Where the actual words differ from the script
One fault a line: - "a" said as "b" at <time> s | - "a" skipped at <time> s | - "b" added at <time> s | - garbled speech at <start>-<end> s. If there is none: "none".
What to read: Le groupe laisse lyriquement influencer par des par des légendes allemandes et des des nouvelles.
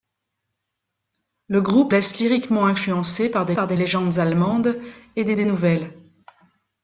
none